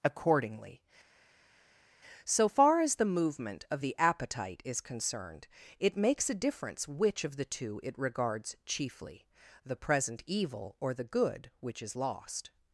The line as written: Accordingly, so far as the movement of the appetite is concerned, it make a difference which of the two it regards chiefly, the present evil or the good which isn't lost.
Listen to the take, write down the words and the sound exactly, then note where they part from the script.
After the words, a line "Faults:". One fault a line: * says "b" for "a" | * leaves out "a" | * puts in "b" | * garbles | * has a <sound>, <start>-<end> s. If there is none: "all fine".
Accordingly, so far as the movement of the appetite is concerned, it makes a difference which of the two it regards chiefly, the present evil or the good which is lost.
Faults:
* says "makes" for "make"
* says "is" for "isn't"